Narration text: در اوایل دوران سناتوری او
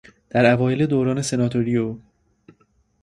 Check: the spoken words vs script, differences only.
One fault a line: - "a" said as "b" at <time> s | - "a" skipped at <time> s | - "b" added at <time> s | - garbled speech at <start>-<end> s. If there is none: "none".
none